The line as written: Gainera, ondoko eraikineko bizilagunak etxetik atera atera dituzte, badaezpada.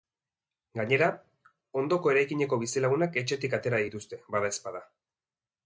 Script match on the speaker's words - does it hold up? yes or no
no